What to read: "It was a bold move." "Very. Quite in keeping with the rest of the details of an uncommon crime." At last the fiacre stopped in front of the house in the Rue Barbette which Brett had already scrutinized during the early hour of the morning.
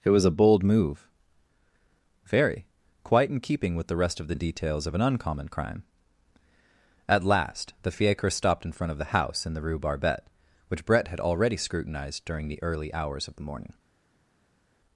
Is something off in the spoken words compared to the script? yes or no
yes